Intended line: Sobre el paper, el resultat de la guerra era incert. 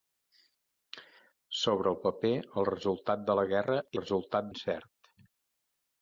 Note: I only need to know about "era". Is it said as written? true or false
false